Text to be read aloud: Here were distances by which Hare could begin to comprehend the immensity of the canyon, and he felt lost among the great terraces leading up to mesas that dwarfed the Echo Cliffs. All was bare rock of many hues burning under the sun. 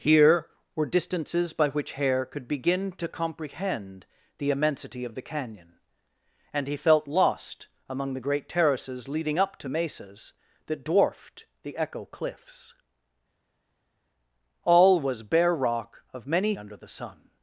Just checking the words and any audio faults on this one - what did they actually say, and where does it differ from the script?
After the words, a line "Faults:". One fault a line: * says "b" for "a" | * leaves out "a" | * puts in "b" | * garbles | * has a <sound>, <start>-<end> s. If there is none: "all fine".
Here were distances by which Hare could begin to comprehend the immensity of the canyon, and he felt lost among the great terraces leading up to mesas that dwarfed the Echo Cliffs. All was bare rock of many under the sun.
Faults:
* leaves out "hues burning"